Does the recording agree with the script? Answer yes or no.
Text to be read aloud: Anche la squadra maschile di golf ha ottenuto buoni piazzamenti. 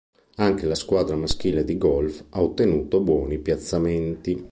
yes